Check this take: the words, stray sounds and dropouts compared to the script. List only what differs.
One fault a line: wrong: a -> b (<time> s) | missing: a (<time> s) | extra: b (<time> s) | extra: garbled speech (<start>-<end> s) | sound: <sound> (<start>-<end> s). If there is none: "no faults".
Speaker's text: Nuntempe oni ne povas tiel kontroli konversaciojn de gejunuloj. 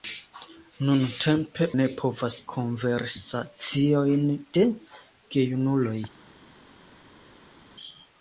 missing: oni (1.6 s)
missing: tiel kontroli (2.4 s)